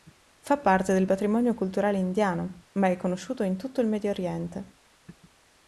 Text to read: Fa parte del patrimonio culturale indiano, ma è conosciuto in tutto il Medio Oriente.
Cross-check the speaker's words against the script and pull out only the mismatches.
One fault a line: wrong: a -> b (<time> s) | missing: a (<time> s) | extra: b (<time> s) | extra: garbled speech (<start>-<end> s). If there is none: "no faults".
no faults